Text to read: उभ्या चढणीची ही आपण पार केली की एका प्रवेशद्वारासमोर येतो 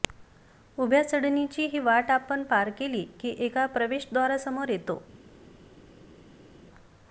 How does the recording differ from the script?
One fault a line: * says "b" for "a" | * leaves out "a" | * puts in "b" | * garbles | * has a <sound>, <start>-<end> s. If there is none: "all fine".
* puts in "वाट"